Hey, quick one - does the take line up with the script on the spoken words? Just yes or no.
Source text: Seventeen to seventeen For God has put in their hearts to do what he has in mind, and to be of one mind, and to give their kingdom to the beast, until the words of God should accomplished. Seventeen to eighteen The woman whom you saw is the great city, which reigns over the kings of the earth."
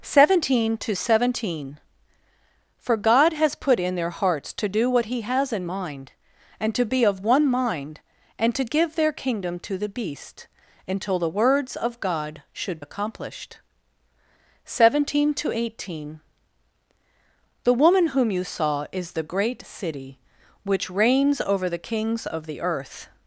yes